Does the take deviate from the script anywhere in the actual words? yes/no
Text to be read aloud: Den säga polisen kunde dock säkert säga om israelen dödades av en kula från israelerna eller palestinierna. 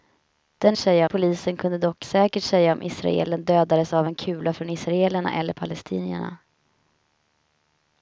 no